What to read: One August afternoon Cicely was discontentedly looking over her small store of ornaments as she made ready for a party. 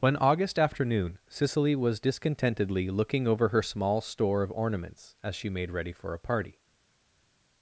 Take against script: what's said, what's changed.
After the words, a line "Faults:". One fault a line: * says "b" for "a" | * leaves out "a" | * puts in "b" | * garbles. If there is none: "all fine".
One August afternoon Cicely was discontentedly looking over her small store of ornaments as she made ready for a party.
Faults:
all fine